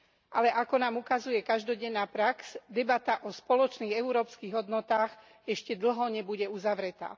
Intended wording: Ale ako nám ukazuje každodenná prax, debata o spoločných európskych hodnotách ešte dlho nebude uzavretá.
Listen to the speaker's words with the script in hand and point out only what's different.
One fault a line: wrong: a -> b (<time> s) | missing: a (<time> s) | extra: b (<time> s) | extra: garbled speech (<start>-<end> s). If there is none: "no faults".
no faults